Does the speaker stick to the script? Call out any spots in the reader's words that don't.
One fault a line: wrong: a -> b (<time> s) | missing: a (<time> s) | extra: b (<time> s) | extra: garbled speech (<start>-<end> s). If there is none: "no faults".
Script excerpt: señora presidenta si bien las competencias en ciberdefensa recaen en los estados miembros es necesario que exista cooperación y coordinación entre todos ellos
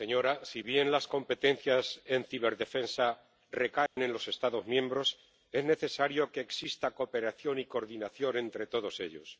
no faults